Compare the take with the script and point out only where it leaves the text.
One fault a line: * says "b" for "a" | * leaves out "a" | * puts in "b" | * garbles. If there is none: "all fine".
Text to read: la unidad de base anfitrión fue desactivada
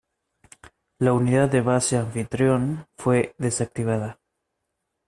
all fine